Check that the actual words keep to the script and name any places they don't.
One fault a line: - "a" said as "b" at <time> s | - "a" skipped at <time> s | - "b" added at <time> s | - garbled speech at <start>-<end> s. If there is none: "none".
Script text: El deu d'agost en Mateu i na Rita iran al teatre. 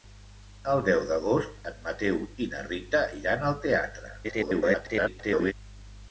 - garbled speech at 4.2-5.5 s